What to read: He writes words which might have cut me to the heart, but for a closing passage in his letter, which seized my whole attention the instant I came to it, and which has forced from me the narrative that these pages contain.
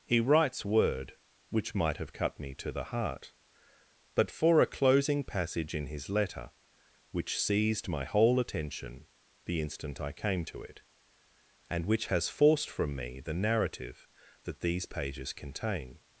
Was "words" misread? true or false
true